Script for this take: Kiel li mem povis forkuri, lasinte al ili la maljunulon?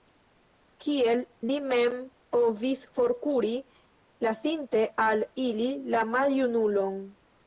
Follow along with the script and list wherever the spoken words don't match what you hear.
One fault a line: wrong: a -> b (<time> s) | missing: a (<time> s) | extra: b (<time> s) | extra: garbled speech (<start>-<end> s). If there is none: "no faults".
no faults